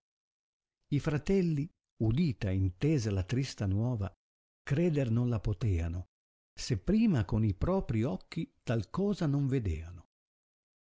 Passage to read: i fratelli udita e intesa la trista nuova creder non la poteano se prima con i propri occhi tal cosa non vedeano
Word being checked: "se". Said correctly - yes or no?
yes